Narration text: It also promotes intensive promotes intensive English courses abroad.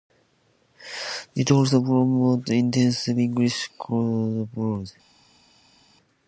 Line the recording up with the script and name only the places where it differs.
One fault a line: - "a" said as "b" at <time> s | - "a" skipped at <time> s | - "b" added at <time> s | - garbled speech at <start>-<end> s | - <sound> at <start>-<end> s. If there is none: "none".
- "promotes intensive" skipped at 3.2 s